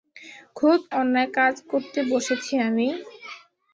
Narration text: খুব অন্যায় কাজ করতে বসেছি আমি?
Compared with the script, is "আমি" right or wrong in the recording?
right